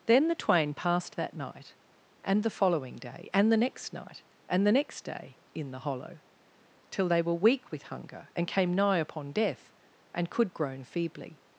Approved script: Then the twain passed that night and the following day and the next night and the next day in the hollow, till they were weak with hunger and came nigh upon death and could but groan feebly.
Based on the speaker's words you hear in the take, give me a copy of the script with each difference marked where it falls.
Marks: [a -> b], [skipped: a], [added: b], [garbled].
Then the twain passed that night and the following day and the next night and the next day in the hollow, till they were weak with hunger and came nigh upon death and could [skipped: but] groan feebly.